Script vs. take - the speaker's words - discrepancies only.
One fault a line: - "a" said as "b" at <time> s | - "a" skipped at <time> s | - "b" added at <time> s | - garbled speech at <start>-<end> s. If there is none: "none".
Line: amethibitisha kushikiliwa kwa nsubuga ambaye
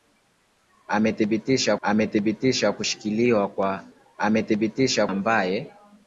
- "amethibitisha" added at 1.8 s
- "nsubuga" said as "amethibitisha" at 4.2 s